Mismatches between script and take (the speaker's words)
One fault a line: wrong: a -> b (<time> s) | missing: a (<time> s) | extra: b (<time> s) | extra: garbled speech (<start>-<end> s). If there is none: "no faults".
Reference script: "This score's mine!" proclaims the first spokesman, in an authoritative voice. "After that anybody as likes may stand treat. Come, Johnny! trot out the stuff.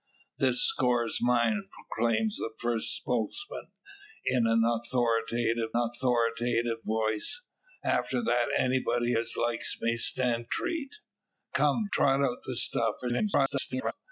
extra: authoritative (5.7 s)
missing: Johnny (11.9 s)
extra: garbled speech (13.0-13.9 s)